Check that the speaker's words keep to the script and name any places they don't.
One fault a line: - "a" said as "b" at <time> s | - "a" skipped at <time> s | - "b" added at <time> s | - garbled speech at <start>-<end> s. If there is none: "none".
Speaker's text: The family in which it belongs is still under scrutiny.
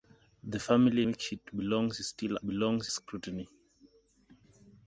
- "in" skipped at 1.0 s
- "under" said as "belongs" at 2.5 s